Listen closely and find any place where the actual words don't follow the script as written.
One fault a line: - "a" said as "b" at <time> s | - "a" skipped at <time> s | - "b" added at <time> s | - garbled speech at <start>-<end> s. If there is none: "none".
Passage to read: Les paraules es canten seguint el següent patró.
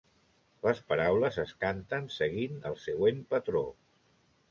none